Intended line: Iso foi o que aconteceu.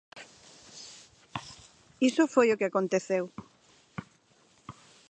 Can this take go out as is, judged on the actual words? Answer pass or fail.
pass